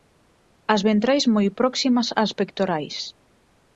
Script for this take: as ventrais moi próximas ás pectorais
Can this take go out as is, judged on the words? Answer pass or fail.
pass